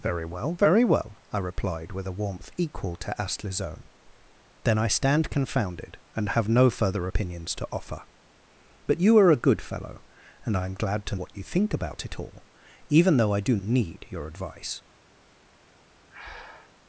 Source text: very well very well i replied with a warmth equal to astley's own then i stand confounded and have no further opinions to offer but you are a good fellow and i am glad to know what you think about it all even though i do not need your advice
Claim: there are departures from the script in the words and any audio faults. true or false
true